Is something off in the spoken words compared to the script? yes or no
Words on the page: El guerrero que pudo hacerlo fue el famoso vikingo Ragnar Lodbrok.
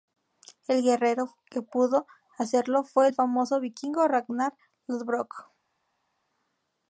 no